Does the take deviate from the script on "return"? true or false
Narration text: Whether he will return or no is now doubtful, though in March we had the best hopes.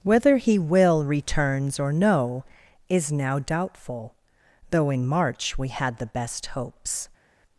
true